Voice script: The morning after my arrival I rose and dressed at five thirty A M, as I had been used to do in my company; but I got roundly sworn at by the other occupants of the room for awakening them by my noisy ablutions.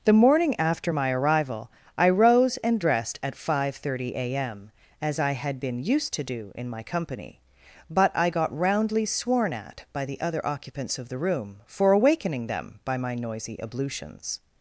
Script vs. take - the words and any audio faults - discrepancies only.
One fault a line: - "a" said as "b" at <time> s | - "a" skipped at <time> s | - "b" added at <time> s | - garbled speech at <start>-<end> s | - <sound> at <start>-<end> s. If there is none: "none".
none